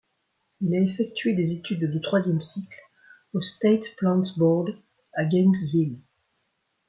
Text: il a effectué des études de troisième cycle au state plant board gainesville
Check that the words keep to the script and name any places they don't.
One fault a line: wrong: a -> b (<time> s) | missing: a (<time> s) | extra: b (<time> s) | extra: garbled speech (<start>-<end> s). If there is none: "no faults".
extra: à (5.1 s)